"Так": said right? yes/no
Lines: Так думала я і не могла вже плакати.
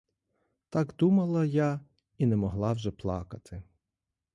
yes